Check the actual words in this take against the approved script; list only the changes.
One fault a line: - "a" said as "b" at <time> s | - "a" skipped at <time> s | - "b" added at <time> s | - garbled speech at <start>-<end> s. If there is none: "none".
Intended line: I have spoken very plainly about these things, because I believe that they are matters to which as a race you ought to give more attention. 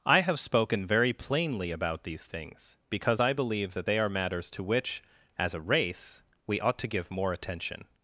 - "you" said as "we" at 6.4 s